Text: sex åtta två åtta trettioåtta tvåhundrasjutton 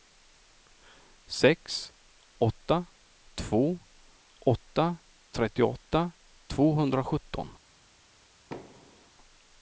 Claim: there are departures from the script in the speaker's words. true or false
false